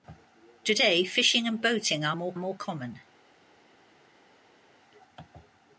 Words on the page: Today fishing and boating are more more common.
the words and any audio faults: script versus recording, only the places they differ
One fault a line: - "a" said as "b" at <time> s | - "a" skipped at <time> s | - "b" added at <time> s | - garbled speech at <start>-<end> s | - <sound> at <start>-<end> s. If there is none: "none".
none